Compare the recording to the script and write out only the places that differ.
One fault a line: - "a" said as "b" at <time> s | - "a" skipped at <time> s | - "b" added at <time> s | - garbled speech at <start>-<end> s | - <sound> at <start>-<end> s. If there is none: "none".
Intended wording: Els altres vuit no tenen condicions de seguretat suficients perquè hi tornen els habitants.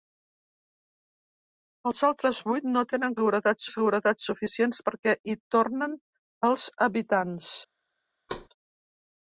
- "condicions" said as "seguretat" at 3.2 s
- thud at 8.3-8.5 s